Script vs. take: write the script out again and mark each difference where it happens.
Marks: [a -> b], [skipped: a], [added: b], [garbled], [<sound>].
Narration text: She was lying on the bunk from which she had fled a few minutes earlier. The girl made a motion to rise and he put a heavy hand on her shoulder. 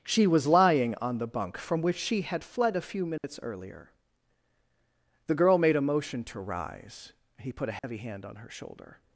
She was lying on the bunk from which she had fled a few minutes [dropout] earlier. The girl made a motion to rise [skipped: and] he put a heavy [dropout] hand on her shoulder.